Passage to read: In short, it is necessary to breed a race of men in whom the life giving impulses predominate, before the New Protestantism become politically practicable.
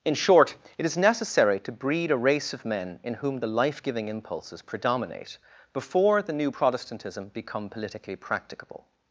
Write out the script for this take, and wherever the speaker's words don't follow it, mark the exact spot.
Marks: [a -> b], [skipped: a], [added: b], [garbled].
In short, it is necessary to breed a race of men in whom the life giving impulses predominate, before the New Protestantism become politically practicable.